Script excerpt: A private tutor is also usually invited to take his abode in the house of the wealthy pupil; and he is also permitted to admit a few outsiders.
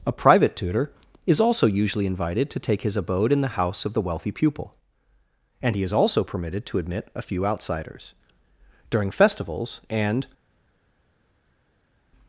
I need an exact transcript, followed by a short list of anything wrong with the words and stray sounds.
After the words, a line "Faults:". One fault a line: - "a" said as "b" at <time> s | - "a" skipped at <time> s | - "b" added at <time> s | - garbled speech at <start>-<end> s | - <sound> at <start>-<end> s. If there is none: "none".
A private tutor is also usually invited to take his abode in the house of the wealthy pupil; and he is also permitted to admit a few outsiders. During festivals and
Faults:
- "During festivals and" added at 8.9 s